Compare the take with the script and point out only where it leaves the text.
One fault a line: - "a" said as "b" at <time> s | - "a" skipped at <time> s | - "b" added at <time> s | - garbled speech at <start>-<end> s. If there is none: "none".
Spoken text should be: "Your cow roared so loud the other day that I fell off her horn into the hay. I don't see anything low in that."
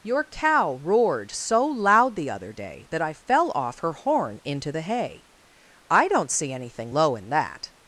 none